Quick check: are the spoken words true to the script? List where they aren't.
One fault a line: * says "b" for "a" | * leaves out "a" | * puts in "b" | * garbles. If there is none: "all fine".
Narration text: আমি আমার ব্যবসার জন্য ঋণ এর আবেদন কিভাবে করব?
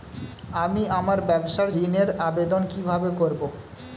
* leaves out "জন্য"